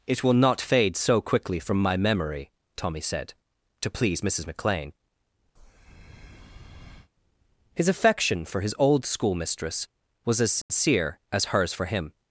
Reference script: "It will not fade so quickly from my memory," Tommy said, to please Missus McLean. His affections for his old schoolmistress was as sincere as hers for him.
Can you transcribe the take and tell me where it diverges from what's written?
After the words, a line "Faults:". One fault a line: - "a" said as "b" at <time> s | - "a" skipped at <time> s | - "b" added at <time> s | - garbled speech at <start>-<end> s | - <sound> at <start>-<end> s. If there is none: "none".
"It will not fade so quickly from my memory," Tommy said, to please Missus McLean. His affection for his old schoolmistress was as sincere as hers for him.
Faults:
- breath at 5.6-7.1 s
- "affections" said as "affection" at 7.9 s
- dropout at 10.6-10.7 s